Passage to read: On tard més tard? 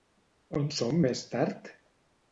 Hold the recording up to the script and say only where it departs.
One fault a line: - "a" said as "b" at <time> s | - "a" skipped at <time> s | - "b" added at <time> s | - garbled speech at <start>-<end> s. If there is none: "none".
- "tard" said as "són" at 0.8 s